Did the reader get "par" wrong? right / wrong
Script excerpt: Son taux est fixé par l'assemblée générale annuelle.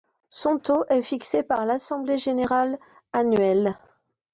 right